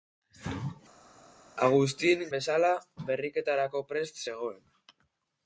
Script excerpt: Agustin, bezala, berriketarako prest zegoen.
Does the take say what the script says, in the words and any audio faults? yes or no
yes